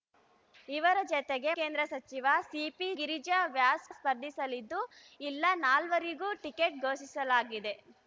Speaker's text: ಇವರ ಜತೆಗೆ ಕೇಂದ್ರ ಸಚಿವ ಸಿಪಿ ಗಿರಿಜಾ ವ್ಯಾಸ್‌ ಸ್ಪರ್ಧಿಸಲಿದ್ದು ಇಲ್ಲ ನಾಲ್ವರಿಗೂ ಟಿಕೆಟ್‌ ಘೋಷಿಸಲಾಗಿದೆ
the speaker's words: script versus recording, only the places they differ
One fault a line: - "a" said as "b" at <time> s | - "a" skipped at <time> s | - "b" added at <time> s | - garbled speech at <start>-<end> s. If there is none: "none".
none